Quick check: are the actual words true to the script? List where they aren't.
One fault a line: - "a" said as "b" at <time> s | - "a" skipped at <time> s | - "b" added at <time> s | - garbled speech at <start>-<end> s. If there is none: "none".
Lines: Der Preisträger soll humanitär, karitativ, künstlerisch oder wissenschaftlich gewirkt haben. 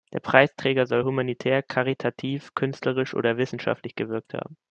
none